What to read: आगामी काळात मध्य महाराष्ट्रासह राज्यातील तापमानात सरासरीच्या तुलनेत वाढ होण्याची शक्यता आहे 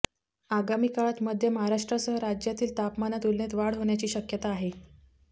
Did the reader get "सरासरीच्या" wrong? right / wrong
wrong